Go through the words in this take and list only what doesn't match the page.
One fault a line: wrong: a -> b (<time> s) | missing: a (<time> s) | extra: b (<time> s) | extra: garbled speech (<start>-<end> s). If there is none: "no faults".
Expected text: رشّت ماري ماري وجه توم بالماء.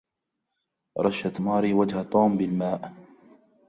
missing: ماري (1.7 s)